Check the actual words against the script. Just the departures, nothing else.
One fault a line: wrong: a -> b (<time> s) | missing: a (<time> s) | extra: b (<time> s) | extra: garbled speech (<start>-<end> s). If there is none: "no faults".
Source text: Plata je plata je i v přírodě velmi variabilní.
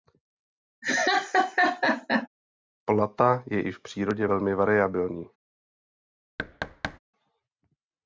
missing: plata je (3.6 s)